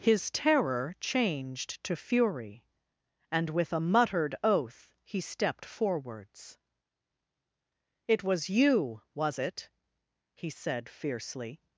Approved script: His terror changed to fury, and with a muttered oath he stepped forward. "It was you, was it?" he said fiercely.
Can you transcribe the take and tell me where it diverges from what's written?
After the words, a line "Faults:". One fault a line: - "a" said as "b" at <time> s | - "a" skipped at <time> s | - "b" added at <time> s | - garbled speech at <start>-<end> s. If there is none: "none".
His terror changed to fury, and with a muttered oath he stepped forwards. "It was you, was it?" he said fiercely.
Faults:
- "forward" said as "forwards" at 5.6 s